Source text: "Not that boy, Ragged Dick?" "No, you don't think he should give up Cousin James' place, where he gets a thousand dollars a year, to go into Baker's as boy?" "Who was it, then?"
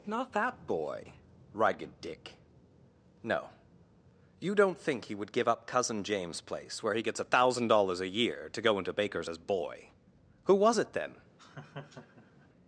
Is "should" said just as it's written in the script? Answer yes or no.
no